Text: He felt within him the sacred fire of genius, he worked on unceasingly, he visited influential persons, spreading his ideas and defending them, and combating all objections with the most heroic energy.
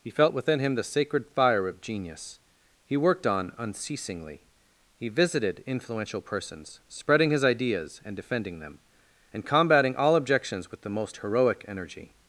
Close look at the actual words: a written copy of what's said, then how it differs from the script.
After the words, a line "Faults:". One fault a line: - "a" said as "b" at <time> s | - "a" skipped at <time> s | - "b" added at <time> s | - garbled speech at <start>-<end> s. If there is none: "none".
He felt within him the sacred fire of genius, he worked on unceasingly, he visited influential persons, spreading his ideas and defending them, and combating all objections with the most heroic energy.
Faults:
none